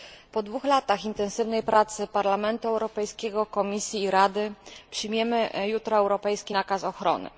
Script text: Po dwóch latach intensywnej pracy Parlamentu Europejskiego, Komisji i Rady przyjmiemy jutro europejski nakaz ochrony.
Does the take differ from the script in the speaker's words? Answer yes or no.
no